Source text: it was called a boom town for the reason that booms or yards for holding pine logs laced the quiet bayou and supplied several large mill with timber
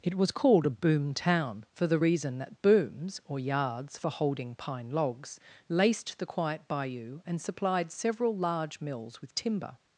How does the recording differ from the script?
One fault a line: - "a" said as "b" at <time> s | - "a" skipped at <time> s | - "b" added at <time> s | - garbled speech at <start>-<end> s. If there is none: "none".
- "mill" said as "mills" at 8.8 s